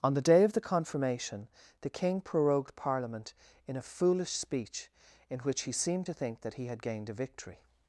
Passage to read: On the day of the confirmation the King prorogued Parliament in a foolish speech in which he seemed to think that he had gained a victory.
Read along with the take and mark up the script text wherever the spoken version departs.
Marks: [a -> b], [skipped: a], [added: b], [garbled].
On the day of the confirmation the King prorogued Parliament in a foolish speech in which he seemed to think that he had gained a victory.